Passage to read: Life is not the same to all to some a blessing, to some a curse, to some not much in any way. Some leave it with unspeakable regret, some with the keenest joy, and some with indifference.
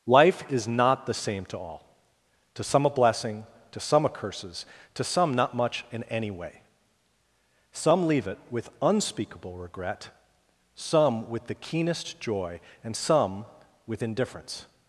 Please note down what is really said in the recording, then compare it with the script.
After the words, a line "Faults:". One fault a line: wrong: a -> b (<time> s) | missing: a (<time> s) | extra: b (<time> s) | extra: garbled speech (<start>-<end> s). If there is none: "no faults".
Life is not the same to all to some a blessing, to some a curses, to some not much in any way. Some leave it with unspeakable regret, some with the keenest joy, and some with indifference.
Faults:
wrong: curse -> curses (4.1 s)